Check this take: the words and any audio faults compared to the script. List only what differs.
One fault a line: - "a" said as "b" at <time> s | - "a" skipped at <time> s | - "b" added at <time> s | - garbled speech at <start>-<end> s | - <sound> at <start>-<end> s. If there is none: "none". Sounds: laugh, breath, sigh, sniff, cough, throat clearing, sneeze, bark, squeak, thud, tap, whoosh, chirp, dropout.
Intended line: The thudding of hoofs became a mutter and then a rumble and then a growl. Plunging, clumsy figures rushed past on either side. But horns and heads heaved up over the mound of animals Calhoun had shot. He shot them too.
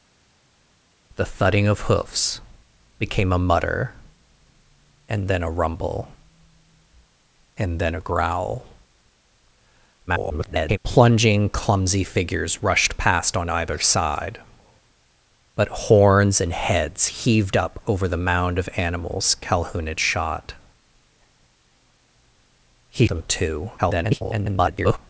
- garbled speech at 10.1-10.8 s
- "shot" skipped at 23.1 s
- garbled speech at 23.8-25.0 s